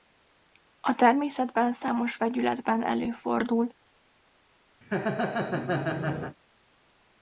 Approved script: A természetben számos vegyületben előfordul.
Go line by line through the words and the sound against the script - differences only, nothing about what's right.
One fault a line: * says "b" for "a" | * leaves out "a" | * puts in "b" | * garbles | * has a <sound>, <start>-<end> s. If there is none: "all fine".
* has a laugh, 4.8-6.4 s